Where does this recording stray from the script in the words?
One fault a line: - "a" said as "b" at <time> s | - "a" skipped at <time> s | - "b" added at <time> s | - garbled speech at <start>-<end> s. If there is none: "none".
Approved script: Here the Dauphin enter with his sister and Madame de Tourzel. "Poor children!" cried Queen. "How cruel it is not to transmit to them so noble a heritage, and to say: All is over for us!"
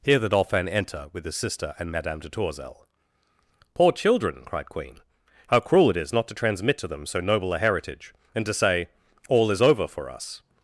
none